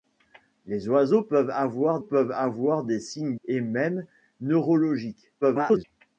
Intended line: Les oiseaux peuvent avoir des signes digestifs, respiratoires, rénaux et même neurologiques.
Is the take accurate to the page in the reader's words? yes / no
no